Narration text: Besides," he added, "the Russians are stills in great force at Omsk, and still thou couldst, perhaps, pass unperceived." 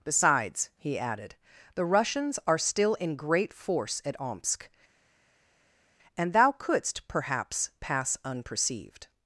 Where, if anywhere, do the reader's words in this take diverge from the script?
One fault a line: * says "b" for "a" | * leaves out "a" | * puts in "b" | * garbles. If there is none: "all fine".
* says "still" for "stills"
* leaves out "still"